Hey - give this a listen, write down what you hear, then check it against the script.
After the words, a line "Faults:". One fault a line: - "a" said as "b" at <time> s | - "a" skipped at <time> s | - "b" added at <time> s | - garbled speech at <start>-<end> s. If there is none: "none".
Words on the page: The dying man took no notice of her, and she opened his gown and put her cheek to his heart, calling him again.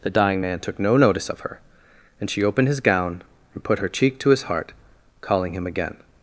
The dying man took no notice of her, and she opened his gown and put her cheek to his heart, calling him again.
Faults:
none